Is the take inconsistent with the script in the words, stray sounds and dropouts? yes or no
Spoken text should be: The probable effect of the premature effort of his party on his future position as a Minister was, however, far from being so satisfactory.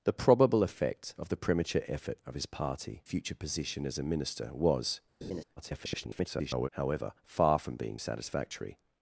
yes